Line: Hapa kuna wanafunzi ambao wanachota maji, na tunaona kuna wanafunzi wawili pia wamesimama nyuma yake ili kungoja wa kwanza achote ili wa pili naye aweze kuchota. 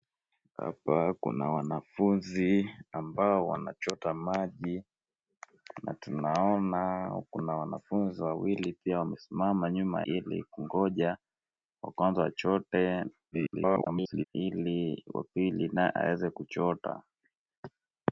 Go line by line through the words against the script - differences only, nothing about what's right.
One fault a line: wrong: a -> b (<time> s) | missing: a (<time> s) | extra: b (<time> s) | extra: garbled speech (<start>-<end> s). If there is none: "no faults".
missing: yake (10.0 s)
extra: garbled speech (13.3-14.2 s)